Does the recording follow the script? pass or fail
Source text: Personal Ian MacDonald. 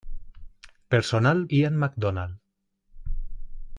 pass